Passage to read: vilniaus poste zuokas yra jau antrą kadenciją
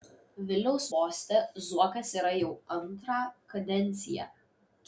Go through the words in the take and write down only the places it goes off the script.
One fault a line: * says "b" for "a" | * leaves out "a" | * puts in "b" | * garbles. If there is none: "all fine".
all fine